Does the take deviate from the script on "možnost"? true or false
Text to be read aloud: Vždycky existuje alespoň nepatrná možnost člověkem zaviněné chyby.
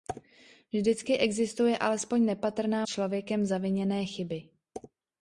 true